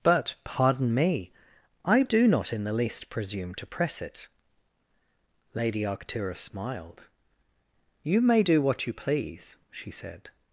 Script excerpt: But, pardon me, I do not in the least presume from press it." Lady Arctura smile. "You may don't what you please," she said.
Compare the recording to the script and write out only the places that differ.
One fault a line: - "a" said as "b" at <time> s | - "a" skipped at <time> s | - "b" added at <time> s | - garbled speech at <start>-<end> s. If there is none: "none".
- "from" said as "to" at 3.6 s
- "smile" said as "smiled" at 6.4 s
- "don't" said as "do" at 8.4 s